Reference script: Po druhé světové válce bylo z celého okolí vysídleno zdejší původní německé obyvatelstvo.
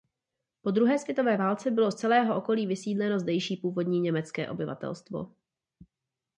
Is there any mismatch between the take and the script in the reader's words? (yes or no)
no